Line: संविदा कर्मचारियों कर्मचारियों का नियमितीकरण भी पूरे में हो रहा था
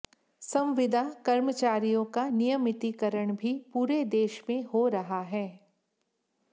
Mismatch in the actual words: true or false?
true